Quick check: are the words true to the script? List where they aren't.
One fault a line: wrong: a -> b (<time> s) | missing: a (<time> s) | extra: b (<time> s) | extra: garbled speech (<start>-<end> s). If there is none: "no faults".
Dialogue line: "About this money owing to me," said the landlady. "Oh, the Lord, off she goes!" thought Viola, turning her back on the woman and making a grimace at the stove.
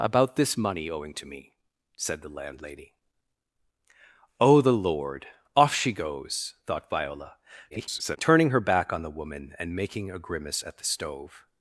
extra: garbled speech (7.7-8.2 s)